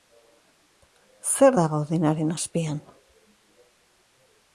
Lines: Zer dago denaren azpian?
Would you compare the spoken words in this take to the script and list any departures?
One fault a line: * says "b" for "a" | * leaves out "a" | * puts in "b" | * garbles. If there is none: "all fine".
all fine